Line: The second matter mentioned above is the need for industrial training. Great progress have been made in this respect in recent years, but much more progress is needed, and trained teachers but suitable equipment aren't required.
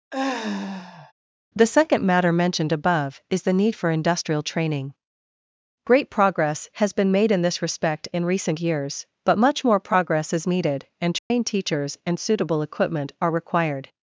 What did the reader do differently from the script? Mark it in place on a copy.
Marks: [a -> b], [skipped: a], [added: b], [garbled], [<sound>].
[sigh] The second matter mentioned above is the need for industrial training. Great progress [have -> has] been made in this respect in recent years, but much more progress is needed, and trained [dropout] teachers [but -> and] suitable equipment [aren't -> are] required.